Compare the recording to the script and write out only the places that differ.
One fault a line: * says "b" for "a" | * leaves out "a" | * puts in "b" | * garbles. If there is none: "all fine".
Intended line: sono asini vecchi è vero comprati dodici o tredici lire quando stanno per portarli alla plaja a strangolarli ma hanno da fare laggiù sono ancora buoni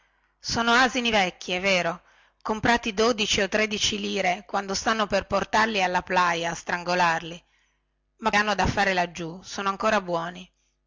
all fine